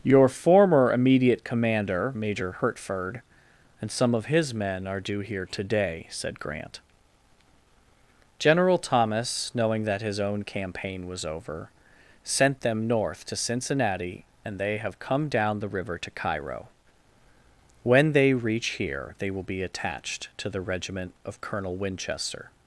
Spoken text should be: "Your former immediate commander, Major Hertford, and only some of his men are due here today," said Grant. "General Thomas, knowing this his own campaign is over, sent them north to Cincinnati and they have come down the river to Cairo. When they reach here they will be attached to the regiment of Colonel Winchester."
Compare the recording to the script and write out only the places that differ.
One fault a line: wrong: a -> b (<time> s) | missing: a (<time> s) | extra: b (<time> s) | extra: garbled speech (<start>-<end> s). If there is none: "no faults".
missing: only (3.9 s)
wrong: this -> that (9.9 s)
wrong: is -> was (11.1 s)